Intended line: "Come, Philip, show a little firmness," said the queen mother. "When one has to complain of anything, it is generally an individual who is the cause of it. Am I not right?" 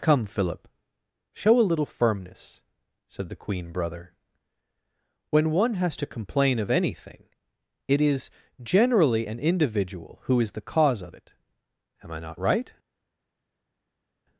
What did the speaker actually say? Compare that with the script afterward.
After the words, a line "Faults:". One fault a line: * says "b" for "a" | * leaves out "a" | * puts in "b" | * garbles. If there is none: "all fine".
"Come, Philip, show a little firmness," said the queen brother. "When one has to complain of anything, it is generally an individual who is the cause of it. Am I not right?"
Faults:
* says "brother" for "mother"